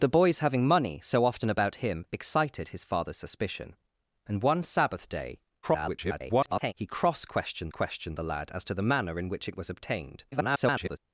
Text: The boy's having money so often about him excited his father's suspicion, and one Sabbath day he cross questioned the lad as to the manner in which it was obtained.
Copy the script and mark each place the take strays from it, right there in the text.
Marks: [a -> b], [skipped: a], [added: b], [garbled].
The boy's having money so often about him excited his father's suspicion, and one Sabbath day [garbled] he cross questioned [added: questioned] the lad as to the manner in which it was obtained. [garbled]